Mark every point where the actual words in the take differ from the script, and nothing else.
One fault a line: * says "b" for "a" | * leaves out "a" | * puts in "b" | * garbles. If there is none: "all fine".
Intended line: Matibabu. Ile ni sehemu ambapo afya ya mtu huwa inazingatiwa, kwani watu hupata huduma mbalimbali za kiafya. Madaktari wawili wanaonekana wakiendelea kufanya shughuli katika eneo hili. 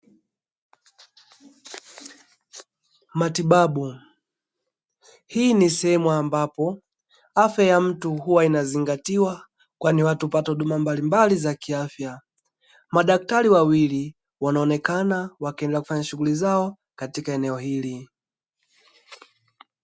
* says "Hii" for "Ile"
* puts in "zao"